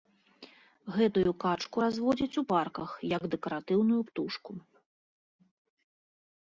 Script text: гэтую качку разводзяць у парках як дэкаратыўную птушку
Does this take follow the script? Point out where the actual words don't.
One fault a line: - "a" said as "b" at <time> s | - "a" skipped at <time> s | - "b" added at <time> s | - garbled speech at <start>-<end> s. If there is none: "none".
none